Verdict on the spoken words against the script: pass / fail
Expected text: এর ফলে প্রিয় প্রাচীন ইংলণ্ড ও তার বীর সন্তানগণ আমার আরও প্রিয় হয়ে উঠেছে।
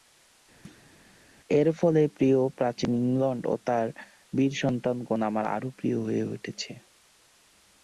pass